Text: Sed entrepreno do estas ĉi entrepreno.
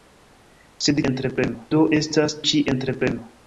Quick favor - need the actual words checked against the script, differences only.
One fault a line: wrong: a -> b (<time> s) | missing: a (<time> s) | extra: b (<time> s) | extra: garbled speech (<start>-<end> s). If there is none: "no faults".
no faults